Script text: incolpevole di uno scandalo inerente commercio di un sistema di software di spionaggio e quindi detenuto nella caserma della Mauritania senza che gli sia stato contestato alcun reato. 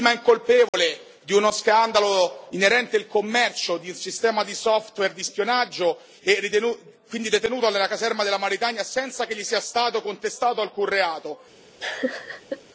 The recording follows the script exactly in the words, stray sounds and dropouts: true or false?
false